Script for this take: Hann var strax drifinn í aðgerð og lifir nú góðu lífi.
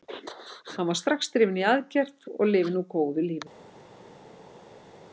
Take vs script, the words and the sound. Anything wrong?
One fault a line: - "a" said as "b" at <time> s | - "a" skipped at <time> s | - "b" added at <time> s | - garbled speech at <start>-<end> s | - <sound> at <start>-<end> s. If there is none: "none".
none